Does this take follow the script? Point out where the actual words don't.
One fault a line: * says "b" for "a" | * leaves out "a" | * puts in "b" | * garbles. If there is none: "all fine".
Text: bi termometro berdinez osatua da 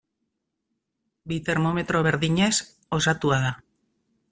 all fine